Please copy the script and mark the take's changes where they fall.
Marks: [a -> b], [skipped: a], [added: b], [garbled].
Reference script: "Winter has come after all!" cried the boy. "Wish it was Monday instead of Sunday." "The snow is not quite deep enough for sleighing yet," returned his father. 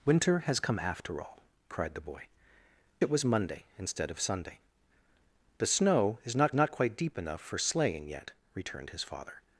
"Winter has come after all!" cried the boy. [skipped: "Wish] it was Monday instead of Sunday." "The snow is not [added: not] quite deep enough for sleighing yet," returned his father.